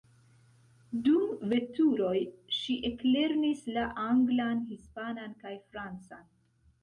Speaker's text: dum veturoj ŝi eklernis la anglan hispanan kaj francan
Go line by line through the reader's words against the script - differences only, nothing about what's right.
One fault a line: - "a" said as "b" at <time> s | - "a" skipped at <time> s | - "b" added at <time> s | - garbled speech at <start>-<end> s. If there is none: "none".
none